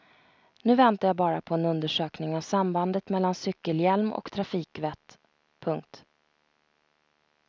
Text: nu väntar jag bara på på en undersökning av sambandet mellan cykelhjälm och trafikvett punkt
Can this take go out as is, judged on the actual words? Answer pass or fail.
fail